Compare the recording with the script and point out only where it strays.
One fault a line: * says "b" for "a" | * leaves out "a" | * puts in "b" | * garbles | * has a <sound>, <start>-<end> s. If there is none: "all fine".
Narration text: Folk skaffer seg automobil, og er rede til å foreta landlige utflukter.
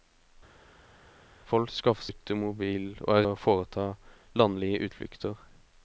* leaves out "seg"
* leaves out "rede til"